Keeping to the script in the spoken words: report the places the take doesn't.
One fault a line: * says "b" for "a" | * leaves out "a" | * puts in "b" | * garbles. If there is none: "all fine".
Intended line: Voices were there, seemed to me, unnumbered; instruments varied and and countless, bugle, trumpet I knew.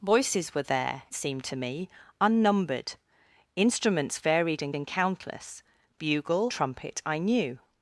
all fine